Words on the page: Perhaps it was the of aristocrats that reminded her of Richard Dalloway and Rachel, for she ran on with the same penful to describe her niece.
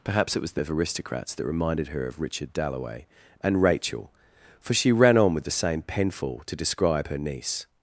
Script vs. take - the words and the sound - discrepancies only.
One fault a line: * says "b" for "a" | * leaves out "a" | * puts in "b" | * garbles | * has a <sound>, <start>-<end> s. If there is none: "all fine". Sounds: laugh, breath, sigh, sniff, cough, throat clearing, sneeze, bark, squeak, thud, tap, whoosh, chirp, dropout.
all fine